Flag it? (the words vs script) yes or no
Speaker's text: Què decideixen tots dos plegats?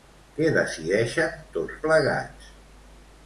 yes